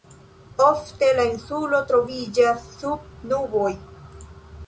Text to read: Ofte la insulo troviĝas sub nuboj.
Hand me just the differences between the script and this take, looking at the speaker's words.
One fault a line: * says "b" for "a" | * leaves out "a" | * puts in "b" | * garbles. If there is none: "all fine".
all fine